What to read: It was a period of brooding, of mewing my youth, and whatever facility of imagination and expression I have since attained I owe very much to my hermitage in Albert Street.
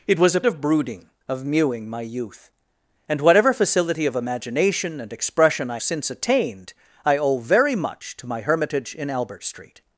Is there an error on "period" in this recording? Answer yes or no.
yes